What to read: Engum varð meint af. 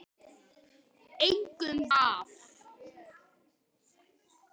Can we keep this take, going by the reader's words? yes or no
no